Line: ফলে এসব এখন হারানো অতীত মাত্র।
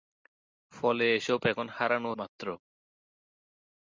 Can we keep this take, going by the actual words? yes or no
no